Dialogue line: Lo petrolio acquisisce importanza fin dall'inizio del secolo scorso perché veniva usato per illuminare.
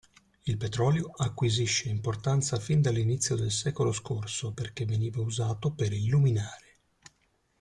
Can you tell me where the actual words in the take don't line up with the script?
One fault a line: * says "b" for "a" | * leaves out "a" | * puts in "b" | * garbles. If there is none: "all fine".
* says "Il" for "Lo"